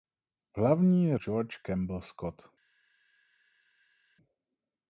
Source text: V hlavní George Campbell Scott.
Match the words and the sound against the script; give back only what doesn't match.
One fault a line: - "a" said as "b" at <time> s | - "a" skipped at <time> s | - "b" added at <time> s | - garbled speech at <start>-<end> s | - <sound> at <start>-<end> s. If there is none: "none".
none